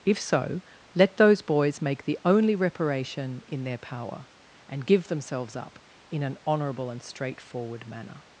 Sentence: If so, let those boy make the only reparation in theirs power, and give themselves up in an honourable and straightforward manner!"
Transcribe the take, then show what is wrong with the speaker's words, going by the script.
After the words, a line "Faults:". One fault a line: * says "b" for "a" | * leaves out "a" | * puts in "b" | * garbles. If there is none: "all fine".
If so, let those boys make the only reparation in their power, and give themselves up in an honourable and straightforward manner!"
Faults:
* says "boys" for "boy"
* says "their" for "theirs"